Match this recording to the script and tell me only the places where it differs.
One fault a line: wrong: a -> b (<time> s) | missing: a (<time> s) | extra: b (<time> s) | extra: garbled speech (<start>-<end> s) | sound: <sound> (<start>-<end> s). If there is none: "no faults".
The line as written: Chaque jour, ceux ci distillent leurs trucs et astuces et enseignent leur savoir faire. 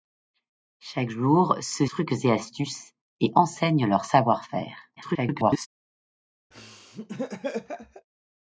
missing: ci distillent leurs (1.9 s)
extra: garbled speech (5.0-5.7 s)
sound: laugh (6.5-8.1 s)